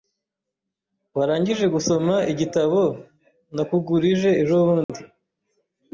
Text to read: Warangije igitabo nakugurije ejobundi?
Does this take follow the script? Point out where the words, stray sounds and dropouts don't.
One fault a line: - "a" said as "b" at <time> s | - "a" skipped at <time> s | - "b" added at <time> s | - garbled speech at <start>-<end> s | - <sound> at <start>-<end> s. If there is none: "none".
- "gusoma" added at 1.8 s
- dropout at 4.8-4.9 s